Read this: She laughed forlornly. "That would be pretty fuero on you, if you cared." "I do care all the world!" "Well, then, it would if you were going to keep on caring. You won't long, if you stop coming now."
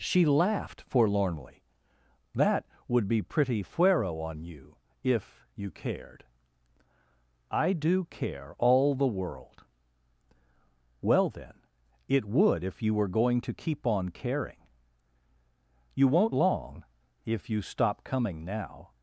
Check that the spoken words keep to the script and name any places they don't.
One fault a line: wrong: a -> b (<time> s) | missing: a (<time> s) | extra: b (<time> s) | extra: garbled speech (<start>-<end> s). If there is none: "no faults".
no faults